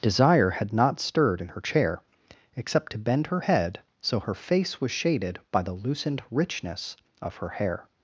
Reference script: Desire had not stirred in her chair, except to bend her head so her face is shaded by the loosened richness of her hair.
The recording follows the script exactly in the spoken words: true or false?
false